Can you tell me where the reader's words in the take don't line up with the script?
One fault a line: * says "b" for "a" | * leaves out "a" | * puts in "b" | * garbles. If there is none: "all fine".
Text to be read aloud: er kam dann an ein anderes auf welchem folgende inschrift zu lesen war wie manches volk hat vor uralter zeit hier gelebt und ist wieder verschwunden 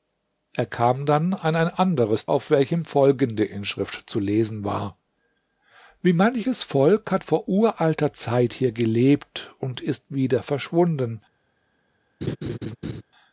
all fine